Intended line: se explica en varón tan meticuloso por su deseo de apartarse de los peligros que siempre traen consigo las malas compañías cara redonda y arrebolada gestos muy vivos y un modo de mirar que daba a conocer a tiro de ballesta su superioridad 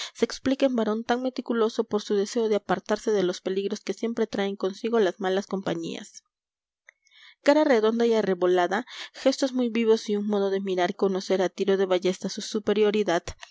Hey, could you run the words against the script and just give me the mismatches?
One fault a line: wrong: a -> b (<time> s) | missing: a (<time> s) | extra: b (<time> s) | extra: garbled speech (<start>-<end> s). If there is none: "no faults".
missing: que daba (10.9 s)